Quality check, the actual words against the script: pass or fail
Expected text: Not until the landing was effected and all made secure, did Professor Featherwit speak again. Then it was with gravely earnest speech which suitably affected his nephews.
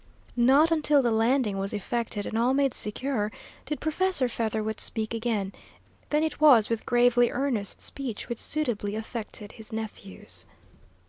pass